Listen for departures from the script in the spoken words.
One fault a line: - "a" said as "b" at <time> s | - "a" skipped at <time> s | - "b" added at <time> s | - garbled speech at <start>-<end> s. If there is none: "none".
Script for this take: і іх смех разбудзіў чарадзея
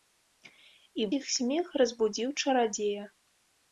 none